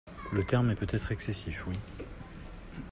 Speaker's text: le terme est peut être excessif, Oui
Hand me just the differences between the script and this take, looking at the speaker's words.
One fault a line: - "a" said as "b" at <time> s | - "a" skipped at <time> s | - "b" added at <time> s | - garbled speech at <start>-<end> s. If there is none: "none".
none